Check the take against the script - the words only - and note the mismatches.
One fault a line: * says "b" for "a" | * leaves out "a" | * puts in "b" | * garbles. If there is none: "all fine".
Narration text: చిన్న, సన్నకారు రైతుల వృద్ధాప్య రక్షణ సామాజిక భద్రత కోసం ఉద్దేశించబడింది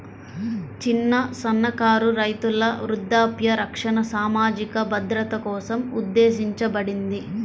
all fine